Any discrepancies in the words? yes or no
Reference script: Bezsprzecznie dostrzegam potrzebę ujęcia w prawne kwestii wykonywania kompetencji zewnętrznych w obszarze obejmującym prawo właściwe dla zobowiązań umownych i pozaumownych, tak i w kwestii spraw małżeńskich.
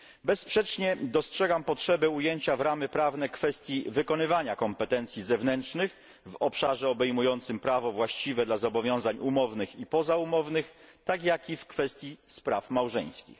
yes